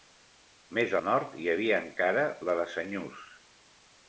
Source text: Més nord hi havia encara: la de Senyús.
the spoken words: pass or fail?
pass